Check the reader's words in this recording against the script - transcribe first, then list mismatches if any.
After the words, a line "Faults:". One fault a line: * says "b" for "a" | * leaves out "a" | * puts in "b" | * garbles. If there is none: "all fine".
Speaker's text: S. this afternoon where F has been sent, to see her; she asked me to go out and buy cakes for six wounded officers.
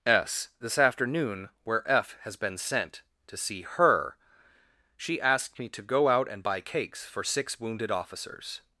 S. this afternoon where F has been sent, to see her; she asked me to go out and buy cakes for six wounded officers.
Faults:
all fine